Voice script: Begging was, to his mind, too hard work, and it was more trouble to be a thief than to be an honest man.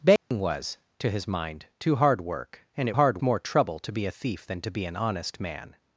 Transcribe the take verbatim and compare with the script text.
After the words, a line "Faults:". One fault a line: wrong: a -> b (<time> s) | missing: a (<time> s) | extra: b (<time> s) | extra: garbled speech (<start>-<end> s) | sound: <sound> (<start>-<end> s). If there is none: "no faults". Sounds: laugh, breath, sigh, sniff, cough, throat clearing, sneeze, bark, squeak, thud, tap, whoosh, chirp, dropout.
Begging was, to his mind, too hard work, and it hard more trouble to be a thief than to be an honest man.
Faults:
sound: dropout (0.2-0.3 s)
wrong: was -> hard (2.9 s)